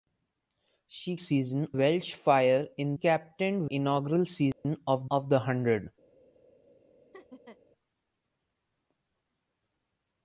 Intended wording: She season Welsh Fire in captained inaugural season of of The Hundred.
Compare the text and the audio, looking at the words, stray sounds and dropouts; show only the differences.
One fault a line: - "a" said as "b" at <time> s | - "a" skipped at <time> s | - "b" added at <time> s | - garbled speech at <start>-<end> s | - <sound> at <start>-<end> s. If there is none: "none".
- dropout at 4.5-4.6 s
- laugh at 7.1-7.6 s